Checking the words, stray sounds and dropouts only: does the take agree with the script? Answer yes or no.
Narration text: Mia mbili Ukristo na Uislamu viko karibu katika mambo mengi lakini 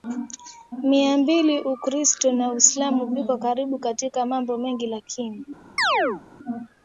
no